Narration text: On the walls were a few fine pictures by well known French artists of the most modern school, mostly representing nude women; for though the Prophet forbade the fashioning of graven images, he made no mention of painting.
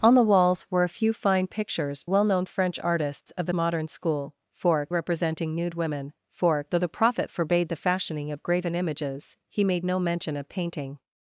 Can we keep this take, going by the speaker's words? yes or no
no